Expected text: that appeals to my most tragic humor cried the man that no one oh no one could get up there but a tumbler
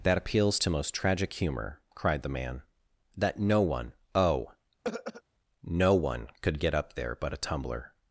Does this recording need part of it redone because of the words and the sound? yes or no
yes